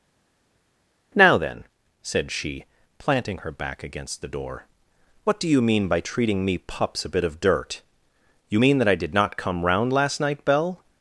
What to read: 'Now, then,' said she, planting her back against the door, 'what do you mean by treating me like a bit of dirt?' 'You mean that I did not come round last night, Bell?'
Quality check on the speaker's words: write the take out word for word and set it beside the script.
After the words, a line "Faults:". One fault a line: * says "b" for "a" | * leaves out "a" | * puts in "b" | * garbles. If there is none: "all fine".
'Now, then,' said she, planting her back against the door, 'what do you mean by treating me pups a bit of dirt?' 'You mean that I did not come round last night, Bell?'
Faults:
* says "pups" for "like"